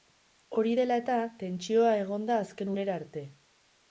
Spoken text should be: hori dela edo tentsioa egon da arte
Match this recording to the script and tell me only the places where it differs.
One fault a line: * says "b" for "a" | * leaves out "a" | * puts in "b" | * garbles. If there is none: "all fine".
* says "eta" for "edo"
* puts in "azken unera"